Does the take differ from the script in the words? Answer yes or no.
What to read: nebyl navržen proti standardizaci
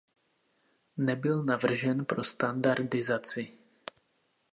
yes